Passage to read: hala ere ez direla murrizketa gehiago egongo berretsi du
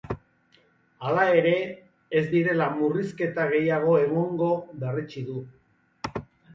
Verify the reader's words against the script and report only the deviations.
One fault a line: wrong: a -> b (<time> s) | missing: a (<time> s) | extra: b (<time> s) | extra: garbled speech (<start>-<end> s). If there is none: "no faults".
no faults